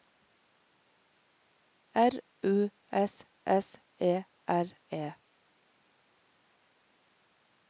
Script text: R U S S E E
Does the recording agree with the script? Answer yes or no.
no